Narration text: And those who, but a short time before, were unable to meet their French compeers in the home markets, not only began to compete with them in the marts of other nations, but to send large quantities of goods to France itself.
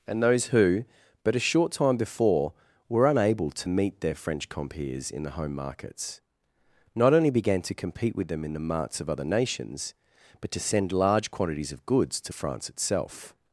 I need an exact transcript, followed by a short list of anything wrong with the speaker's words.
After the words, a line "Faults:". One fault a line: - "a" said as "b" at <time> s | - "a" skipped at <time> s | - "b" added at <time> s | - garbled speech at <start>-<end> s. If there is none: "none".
And those who, but a short time before, were unable to meet their French compeers in the home markets, not only began to compete with them in the marts of other nations, but to send large quantities of goods to France itself.
Faults:
none